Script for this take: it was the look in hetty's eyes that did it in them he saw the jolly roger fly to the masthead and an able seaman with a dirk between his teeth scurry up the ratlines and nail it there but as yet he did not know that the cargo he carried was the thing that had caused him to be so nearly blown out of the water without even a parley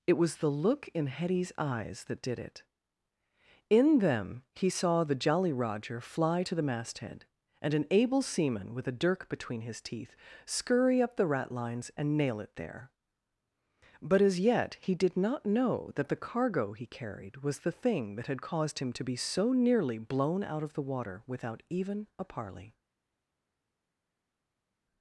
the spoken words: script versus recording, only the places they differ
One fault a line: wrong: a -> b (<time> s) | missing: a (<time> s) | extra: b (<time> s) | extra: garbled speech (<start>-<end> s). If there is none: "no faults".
no faults